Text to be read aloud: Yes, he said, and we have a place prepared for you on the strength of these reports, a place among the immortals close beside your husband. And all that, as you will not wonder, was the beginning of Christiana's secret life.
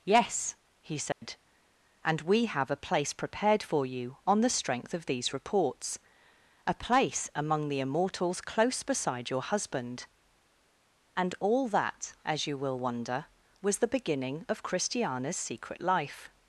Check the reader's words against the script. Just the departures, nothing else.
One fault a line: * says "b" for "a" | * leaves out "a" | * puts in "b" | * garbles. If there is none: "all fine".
* leaves out "not"